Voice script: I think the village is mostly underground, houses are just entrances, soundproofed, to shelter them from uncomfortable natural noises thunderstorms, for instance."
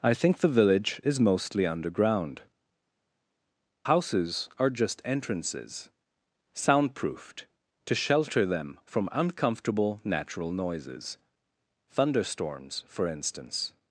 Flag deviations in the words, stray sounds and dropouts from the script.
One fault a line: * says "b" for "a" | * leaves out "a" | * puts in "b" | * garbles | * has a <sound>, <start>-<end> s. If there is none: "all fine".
all fine